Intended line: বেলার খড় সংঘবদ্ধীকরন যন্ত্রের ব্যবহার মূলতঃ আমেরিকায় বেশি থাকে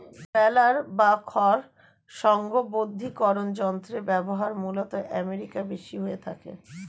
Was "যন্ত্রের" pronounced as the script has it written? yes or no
yes